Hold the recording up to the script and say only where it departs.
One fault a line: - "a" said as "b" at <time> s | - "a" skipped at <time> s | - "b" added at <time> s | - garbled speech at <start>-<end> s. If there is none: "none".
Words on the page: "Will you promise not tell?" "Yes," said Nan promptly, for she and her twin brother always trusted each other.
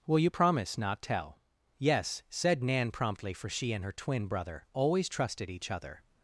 none